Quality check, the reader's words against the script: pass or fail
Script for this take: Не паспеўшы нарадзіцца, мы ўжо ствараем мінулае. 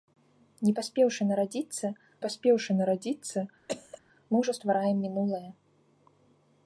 fail